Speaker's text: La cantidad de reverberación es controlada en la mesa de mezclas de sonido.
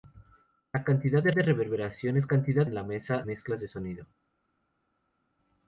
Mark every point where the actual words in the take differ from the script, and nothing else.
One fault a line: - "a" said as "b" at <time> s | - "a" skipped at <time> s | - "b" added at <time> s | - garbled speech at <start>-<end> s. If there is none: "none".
- "de" added at 1.3 s
- "controlada" said as "cantidad" at 2.3 s
- "de" skipped at 3.2 s